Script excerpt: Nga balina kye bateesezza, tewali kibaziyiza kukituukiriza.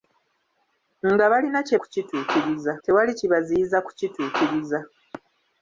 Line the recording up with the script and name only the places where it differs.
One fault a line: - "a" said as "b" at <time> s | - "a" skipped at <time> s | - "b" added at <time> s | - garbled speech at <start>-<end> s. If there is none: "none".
- "bateesezza" said as "kukituukiriza" at 1.8 s